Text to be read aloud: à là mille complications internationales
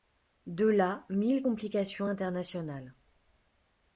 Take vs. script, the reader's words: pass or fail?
fail